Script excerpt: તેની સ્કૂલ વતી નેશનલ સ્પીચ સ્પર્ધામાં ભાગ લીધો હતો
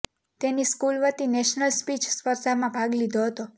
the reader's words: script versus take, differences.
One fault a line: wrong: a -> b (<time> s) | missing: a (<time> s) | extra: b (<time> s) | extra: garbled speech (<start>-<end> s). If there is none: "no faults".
no faults